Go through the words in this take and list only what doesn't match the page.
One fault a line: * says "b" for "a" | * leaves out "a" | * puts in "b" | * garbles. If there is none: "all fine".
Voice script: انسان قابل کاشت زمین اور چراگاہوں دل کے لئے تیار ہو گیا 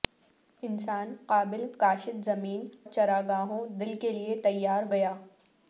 * leaves out "اور"
* leaves out "ہو"